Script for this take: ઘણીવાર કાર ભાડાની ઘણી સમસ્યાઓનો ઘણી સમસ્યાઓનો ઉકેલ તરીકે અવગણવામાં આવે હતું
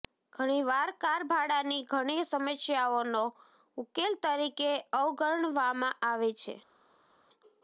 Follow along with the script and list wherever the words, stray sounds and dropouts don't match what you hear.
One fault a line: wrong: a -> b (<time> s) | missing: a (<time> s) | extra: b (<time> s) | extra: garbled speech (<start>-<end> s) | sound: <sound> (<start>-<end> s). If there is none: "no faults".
missing: ઘણી સમસ્યાઓનો (3.2 s)
wrong: હતું -> છે (6.4 s)